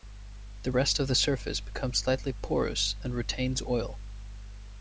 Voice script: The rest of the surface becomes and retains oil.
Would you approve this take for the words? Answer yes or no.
no